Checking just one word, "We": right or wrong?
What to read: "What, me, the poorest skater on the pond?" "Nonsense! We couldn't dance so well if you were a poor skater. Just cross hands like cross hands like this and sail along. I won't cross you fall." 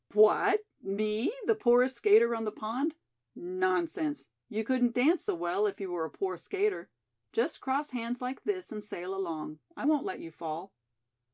wrong